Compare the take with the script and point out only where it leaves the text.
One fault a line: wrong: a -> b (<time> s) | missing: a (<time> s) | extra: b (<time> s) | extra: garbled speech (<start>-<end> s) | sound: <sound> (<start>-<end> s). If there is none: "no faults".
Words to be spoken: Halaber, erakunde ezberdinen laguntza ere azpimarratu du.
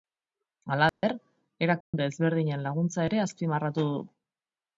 sound: dropout (0.9-1.0 s)
sound: dropout (1.8-1.9 s)